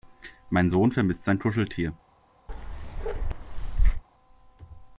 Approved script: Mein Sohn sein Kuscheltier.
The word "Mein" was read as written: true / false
true